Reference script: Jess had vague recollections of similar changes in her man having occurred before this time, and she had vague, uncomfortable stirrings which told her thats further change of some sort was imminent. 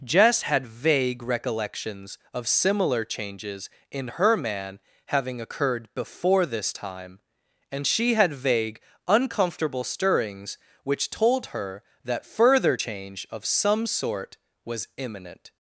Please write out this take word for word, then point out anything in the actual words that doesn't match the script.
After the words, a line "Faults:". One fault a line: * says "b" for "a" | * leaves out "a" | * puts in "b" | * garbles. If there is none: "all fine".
Jess had vague recollections of similar changes in her man having occurred before this time, and she had vague, uncomfortable stirrings which told her that further change of some sort was imminent.
Faults:
* says "that" for "thats"